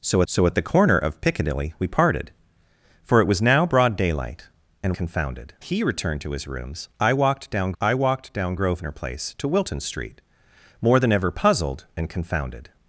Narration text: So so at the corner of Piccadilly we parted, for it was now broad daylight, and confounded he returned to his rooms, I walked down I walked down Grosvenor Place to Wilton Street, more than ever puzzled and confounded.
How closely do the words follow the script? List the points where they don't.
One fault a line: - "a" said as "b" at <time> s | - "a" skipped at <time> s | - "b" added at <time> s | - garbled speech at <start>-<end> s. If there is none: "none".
none